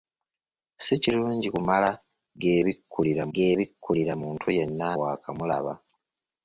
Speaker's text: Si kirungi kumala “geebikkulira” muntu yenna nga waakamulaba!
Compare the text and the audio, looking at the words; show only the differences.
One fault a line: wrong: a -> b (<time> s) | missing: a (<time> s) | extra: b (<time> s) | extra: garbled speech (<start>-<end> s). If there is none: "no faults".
extra: geebikkulira (3.3 s)
missing: nga (4.9 s)